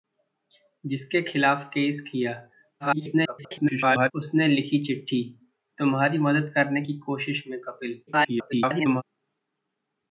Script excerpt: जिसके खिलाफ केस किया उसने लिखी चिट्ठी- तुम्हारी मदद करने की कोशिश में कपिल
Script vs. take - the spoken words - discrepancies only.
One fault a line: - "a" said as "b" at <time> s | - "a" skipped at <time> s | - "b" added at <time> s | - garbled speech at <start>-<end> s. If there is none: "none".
- garbled speech at 2.8-4.1 s
- garbled speech at 8.1-9.0 s